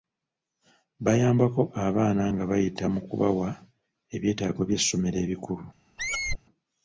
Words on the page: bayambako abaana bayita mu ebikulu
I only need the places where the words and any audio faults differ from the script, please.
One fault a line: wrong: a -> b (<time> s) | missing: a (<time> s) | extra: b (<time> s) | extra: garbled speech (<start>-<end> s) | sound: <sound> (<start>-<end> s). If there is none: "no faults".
extra: nga (2.3 s)
extra: kubawa ebyetaago by'essomero (3.1 s)
sound: squeak (6.0-6.4 s)